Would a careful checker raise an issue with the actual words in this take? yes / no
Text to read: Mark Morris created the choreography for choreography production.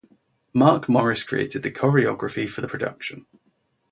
yes